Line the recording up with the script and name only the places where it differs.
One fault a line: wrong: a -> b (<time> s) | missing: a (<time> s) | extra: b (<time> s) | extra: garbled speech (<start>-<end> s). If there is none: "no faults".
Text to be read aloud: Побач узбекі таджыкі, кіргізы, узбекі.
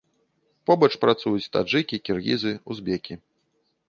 wrong: узбекі -> працуюць (1.0 s)